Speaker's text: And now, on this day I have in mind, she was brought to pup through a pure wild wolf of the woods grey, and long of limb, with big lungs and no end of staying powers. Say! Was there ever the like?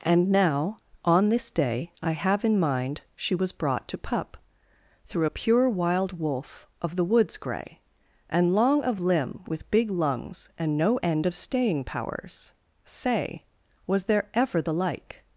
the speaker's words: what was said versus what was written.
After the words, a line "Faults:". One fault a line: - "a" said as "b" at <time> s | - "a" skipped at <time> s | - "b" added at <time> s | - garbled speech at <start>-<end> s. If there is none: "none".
And now, on this day I have in mind, she was brought to pup through a pure wild wolf of the woods grey, and long of limb, with big lungs and no end of staying powers. Say! Was there ever the like?
Faults:
none